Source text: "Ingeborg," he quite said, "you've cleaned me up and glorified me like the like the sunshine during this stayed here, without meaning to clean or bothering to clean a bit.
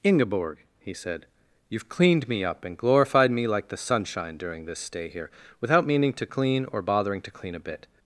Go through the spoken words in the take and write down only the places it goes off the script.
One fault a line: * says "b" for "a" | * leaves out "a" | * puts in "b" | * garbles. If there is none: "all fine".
* leaves out "quite"
* leaves out "like the"
* says "stay" for "stayed"